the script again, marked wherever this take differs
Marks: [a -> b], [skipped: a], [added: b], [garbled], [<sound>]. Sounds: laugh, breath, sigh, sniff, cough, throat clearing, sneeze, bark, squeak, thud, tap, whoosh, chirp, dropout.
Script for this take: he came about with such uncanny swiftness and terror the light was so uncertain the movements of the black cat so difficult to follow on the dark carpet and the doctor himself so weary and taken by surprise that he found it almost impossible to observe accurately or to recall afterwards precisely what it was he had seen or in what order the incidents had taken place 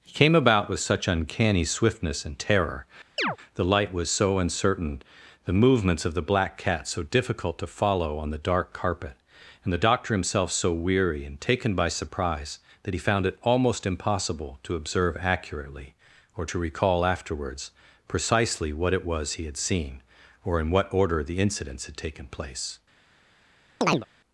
he came about with such uncanny swiftness and terror [chirp] the light was so uncertain the movements of the black cat so difficult to follow on the dark carpet and the doctor himself so weary and taken by surprise that he found it almost impossible to observe accurately or to recall afterwards precisely what it was he had seen or in what order the incidents had taken place [chirp]